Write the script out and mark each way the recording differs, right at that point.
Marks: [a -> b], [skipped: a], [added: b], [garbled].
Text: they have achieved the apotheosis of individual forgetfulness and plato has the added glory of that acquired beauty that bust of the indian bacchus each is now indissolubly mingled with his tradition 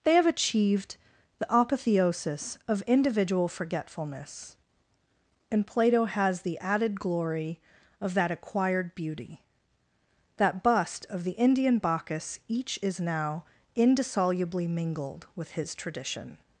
they have achieved the apotheosis of individual forgetfulness and plato has the added glory of that acquired beauty that bust of the indian bacchus each is now indissolubly mingled with his tradition